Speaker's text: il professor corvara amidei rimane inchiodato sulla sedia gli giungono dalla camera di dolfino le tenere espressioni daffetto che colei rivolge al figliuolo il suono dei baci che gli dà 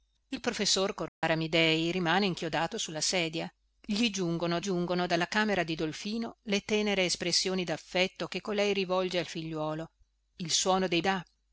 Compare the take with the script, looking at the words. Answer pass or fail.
fail